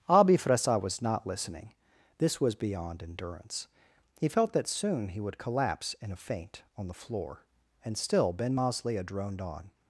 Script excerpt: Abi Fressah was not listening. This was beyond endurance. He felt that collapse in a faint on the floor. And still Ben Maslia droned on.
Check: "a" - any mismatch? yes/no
no